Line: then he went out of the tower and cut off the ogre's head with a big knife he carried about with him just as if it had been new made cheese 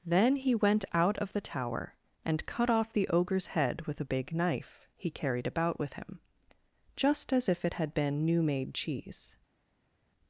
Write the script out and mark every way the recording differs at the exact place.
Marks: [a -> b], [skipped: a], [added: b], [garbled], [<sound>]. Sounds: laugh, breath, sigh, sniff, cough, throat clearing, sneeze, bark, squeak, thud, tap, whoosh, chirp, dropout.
then he went out of the tower and cut off the ogre's head with a big knife he carried about with him just as if it had been new made cheese